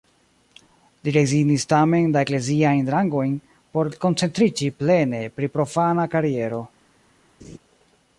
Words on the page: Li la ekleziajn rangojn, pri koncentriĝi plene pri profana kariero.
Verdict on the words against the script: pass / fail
fail